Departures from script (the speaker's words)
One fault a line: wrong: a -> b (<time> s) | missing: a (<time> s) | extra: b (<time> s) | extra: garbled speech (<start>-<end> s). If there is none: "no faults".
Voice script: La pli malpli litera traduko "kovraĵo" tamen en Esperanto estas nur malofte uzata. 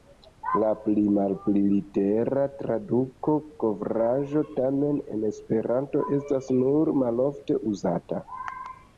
no faults